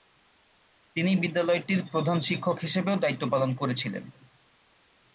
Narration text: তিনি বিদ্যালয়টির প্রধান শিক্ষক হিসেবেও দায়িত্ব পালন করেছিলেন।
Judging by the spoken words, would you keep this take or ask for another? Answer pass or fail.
pass